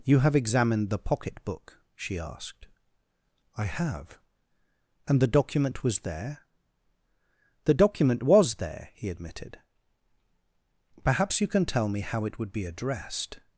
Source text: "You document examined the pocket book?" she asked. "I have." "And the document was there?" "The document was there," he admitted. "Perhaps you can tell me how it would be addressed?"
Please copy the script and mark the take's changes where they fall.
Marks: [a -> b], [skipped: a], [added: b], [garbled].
"You [document -> have] examined the pocket book?" she asked. "I have." "And the document was there?" "The document was there," he admitted. "Perhaps you can tell me how it would be addressed?"